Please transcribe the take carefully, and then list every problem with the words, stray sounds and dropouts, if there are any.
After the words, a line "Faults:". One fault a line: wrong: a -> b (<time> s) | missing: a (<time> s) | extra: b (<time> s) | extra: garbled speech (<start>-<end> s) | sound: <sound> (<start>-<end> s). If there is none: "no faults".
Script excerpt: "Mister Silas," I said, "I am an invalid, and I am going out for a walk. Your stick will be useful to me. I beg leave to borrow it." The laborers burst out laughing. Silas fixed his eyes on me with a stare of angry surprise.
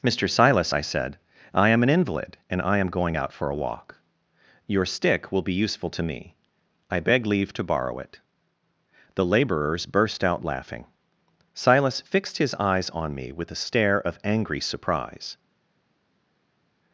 "Mister Silas," I said, "I am an invalid, and I am going out for a walk. Your stick will be useful to me. I beg leave to borrow it." The laborers burst out laughing. Silas fixed his eyes on me with a stare of angry surprise.
Faults:
no faults